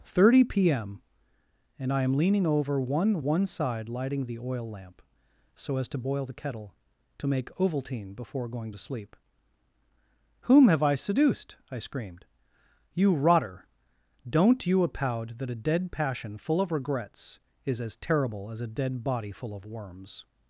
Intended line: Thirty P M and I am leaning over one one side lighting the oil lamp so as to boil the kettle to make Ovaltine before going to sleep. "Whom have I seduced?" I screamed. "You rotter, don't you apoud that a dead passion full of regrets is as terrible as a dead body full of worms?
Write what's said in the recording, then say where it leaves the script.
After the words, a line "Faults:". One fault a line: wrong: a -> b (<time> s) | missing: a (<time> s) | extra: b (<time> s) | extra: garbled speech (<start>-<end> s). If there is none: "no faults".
Thirty P M and I am leaning over one one side lighting the oil lamp so as to boil the kettle to make Ovaltine before going to sleep. "Whom have I seduced?" I screamed. "You rotter, don't you apoud that a dead passion full of regrets is as terrible as a dead body full of worms?
Faults:
no faults